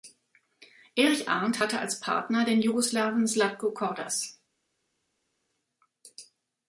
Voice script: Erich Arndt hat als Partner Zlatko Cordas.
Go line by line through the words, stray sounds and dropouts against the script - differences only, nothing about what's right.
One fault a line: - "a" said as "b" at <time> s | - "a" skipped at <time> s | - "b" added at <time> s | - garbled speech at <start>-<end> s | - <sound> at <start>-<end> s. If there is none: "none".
- "hat" said as "hatte" at 1.6 s
- "den Jugoslawen" added at 2.4 s